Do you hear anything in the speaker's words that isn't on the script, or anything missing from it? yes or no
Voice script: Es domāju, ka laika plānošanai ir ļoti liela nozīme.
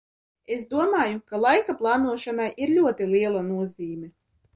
no